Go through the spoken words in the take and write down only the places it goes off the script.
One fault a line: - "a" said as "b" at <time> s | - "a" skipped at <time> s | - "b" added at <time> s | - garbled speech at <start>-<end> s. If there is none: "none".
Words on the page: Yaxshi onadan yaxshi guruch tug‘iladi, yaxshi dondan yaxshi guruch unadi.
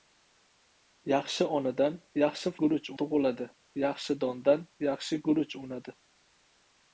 none